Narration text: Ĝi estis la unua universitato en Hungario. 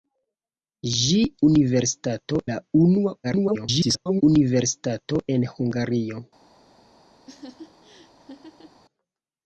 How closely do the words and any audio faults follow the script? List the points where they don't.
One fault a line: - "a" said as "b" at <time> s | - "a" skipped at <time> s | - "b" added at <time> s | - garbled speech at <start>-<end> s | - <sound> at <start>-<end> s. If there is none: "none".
- "estis" said as "universitato" at 1.5 s
- garbled speech at 3.2-4.2 s
- laugh at 7.3-8.8 s